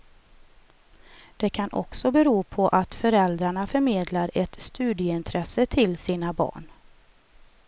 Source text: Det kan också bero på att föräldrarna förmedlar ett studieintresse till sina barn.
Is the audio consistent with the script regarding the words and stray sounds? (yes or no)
yes